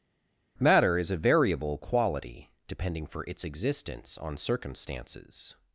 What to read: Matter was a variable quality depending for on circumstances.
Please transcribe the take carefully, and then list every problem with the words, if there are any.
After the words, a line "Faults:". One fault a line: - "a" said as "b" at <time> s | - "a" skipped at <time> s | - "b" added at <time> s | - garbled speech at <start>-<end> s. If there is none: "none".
Matter is a variable quality depending for its existence on circumstances.
Faults:
- "was" said as "is" at 1.0 s
- "its existence" added at 3.3 s